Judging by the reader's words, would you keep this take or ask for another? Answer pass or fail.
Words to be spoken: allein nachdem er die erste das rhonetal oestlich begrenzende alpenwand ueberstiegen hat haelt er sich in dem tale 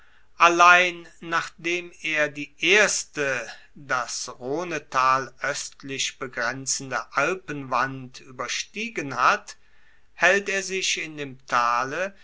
pass